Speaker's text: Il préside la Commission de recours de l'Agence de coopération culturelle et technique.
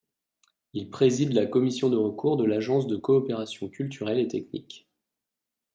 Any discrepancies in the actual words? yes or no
no